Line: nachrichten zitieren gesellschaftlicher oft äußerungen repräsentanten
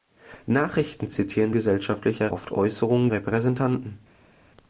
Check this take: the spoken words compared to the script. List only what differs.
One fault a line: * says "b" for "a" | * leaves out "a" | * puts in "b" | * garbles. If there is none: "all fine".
all fine